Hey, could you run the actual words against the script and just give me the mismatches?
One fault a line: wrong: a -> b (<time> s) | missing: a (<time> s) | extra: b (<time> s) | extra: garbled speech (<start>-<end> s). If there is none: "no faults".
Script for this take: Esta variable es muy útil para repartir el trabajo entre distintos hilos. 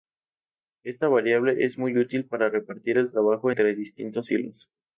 no faults